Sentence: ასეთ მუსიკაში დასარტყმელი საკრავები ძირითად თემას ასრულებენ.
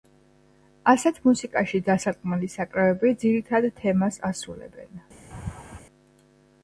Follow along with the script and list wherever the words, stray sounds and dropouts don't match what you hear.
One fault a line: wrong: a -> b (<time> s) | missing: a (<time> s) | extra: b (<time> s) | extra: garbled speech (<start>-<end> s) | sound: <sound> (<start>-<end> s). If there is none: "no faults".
sound: laugh (5.3-5.8 s)